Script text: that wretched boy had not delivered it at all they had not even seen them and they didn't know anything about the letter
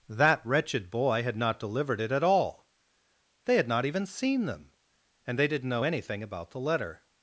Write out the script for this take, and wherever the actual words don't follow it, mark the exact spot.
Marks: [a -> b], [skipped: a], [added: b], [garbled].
that wretched boy had not delivered it at all they had not even seen them and they didn't know anything about the letter